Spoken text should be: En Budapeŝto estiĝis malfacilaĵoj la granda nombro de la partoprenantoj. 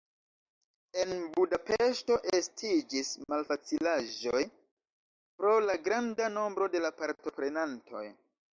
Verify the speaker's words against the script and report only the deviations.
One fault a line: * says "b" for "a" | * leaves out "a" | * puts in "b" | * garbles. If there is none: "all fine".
* puts in "pro"